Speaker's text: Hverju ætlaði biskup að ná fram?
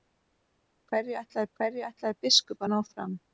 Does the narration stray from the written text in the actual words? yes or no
yes